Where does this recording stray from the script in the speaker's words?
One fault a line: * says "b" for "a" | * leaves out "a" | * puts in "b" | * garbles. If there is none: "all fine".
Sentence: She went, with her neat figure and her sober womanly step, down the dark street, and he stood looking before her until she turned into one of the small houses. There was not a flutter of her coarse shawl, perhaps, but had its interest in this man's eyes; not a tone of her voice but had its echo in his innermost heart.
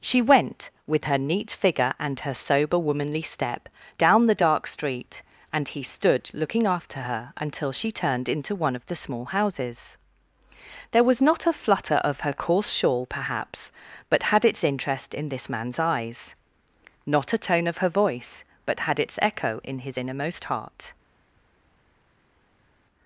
* says "after" for "before"